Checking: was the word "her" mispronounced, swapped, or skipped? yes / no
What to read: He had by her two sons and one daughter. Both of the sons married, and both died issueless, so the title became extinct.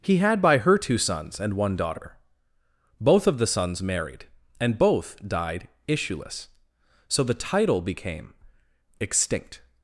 no